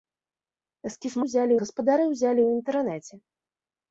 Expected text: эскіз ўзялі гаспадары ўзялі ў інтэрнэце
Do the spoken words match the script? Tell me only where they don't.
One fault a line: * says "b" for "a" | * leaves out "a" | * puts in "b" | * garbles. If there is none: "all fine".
all fine